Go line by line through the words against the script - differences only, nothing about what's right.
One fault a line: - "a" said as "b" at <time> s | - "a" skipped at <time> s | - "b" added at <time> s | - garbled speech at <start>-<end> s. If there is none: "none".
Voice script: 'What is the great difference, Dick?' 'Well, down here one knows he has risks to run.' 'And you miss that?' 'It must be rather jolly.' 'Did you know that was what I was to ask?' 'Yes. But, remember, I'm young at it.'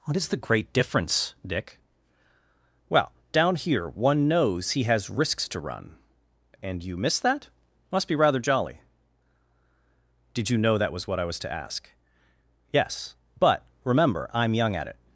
- "It" skipped at 7.5 s